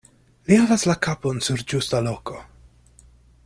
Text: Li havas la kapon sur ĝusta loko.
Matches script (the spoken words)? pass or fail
pass